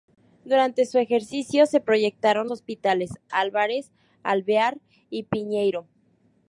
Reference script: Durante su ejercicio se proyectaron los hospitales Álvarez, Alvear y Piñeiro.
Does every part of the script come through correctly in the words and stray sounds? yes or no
no